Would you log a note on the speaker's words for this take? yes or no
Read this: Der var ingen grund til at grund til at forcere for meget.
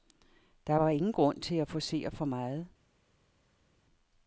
yes